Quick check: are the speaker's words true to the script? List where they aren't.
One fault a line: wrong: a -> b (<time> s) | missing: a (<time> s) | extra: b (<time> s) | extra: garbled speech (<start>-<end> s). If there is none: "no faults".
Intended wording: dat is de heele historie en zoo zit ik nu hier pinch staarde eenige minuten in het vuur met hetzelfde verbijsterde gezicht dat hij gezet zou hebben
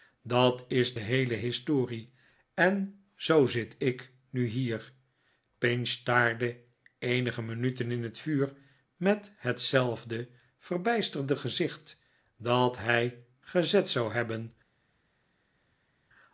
no faults